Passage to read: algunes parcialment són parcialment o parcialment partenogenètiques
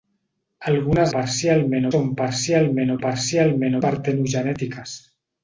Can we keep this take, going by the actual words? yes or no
yes